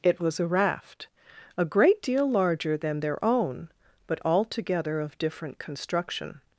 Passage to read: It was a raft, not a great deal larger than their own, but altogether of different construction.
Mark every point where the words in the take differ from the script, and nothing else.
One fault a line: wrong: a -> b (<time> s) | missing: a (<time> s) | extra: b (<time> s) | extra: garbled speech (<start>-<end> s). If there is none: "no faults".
missing: not (1.1 s)